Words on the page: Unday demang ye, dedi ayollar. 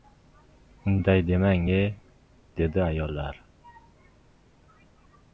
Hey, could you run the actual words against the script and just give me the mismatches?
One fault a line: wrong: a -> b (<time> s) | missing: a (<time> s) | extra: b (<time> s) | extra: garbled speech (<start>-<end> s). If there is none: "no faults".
no faults